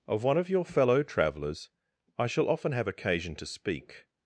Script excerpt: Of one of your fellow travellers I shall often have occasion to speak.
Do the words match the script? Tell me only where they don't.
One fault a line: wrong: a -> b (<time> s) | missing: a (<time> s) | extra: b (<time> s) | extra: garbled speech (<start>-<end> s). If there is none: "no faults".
no faults